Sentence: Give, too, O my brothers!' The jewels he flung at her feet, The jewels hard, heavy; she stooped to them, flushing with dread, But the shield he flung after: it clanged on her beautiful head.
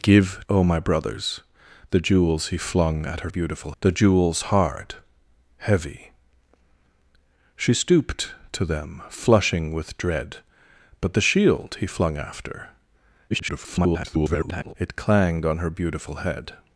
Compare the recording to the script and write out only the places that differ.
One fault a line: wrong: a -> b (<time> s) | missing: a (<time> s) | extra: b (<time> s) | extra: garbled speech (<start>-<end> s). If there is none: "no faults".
missing: too (0.4 s)
wrong: feet -> beautiful (3.3 s)
extra: garbled speech (13.3-14.7 s)